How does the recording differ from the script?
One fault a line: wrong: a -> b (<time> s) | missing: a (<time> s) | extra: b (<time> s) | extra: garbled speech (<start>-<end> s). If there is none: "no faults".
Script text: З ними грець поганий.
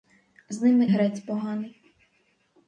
no faults